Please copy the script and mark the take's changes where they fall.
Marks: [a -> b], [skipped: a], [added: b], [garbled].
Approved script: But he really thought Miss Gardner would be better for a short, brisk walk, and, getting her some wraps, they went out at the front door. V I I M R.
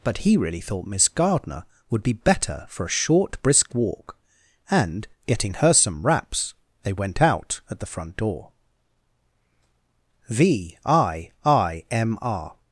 But he really thought Miss Gardner would be better for a short, brisk walk, and, getting her some wraps, they went out at the front door. V I I M R.